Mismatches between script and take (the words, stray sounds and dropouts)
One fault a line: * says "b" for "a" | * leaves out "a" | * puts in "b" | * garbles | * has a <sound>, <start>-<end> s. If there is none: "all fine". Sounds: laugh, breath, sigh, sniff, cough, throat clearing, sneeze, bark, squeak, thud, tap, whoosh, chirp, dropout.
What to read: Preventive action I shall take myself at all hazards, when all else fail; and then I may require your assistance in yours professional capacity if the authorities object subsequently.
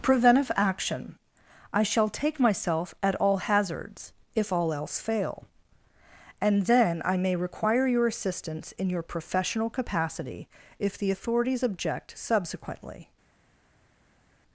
* says "if" for "when"
* says "your" for "yours"